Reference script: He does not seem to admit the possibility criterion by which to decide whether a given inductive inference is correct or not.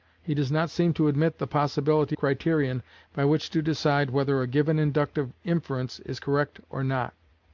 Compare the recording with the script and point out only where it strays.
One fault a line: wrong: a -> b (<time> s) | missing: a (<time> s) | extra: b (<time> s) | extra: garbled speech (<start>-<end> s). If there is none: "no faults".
no faults